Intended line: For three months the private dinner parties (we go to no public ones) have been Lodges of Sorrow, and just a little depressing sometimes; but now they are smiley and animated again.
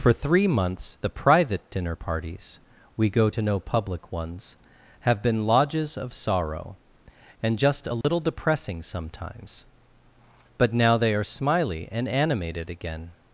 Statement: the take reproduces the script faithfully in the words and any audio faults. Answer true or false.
false